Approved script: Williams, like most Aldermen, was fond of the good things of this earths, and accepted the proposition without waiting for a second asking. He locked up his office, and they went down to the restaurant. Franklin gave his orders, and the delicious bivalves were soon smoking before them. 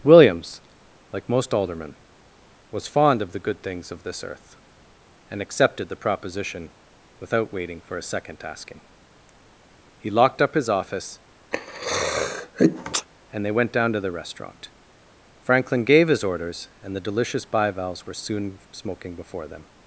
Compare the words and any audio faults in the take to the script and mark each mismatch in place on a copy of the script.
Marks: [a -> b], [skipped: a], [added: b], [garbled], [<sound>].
Williams, like most Aldermen, was fond of the good things of this [earths, -> earth] and accepted the proposition without waiting for a second asking. He locked up his office, [sneeze] and they went down to the restaurant. Franklin gave his orders, and the delicious bivalves were soon smoking before them.